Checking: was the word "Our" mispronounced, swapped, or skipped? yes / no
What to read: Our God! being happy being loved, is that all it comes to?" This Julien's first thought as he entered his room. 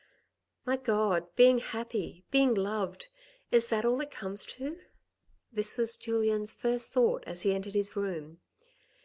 yes